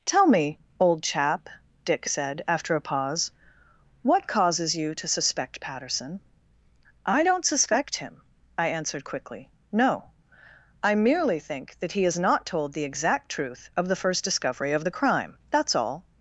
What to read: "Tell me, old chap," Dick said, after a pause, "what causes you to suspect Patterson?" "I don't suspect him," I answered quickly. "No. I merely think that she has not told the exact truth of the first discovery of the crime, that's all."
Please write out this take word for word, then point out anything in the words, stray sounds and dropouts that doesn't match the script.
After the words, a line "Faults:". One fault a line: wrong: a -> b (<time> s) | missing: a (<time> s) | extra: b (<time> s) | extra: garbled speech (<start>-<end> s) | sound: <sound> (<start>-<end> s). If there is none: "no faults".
"Tell me, old chap," Dick said, after a pause, "what causes you to suspect Patterson?" "I don't suspect him," I answered quickly. "No. I merely think that he has not told the exact truth of the first discovery of the crime, that's all."
Faults:
wrong: she -> he (11.9 s)